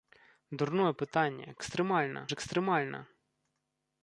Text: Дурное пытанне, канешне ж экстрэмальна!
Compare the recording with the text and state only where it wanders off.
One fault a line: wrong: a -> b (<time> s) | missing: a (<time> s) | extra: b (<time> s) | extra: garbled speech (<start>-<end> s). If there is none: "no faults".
wrong: канешне -> экстрэмальна (1.6 s)